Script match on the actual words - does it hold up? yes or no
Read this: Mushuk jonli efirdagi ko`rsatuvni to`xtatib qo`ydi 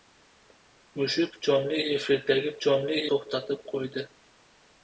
no